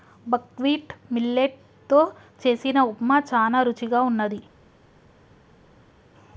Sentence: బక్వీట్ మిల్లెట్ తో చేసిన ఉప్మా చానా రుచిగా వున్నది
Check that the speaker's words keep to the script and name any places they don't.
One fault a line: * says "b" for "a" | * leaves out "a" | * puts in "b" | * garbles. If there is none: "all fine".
all fine